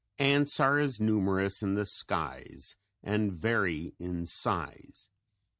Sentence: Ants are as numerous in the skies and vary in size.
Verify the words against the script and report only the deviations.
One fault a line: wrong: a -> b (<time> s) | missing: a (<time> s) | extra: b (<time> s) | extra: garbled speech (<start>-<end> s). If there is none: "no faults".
no faults